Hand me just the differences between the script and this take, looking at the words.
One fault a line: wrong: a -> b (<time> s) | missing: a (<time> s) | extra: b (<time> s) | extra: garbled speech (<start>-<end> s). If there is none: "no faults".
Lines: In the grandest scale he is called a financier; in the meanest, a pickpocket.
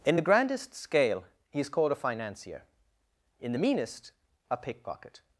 no faults